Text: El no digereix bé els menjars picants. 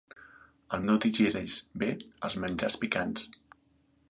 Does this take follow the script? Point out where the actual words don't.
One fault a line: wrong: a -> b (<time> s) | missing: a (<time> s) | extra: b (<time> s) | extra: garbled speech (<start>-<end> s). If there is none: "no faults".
no faults